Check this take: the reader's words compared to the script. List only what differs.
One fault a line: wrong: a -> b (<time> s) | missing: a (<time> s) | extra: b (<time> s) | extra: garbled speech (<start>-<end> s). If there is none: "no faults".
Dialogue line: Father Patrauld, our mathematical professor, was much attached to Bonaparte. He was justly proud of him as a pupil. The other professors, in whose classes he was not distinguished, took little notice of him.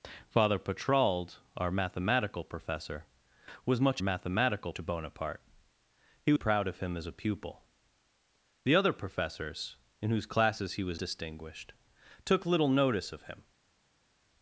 wrong: attached -> mathematical (4.0 s)
missing: was justly (6.3 s)
missing: not (11.0 s)